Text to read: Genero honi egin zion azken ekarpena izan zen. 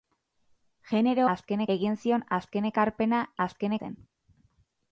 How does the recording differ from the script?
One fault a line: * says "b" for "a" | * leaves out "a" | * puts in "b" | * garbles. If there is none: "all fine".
* says "azken" for "honi"
* says "azken" for "izan"